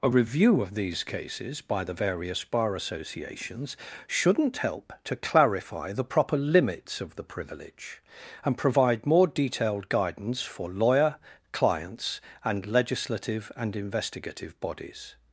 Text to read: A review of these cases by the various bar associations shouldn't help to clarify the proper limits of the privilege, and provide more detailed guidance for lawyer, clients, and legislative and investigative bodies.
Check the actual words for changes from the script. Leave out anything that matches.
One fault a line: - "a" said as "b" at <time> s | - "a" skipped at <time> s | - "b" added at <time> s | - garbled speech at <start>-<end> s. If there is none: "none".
none